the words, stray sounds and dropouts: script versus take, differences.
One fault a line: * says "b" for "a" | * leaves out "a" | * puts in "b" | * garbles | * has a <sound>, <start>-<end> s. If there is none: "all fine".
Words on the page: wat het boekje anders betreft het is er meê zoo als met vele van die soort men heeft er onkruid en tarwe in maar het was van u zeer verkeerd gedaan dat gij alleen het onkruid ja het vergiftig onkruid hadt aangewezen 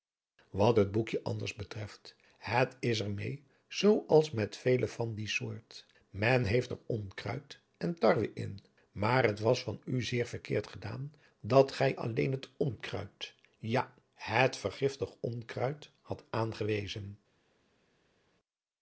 all fine